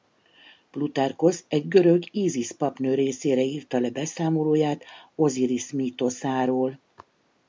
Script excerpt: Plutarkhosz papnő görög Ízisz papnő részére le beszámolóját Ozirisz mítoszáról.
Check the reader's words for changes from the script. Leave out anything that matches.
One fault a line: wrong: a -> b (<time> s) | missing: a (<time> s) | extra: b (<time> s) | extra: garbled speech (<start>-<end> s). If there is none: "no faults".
wrong: papnő -> egy (1.5 s)
extra: írta (3.4 s)